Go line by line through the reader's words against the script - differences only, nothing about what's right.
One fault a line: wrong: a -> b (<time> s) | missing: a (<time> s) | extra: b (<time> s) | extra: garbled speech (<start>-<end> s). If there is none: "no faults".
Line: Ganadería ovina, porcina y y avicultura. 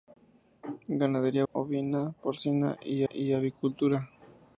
no faults